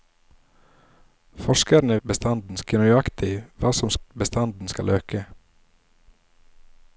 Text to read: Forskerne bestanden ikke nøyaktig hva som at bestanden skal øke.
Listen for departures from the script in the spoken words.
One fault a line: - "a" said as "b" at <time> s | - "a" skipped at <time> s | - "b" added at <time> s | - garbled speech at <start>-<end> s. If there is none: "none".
none